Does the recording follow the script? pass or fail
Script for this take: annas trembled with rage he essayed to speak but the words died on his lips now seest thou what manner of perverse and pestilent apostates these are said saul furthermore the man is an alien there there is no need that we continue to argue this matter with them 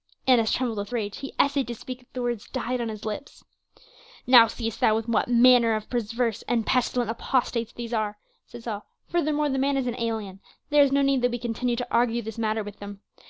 fail